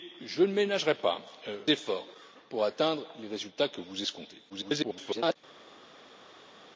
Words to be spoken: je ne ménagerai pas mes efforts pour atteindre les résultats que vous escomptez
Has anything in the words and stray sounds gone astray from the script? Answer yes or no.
yes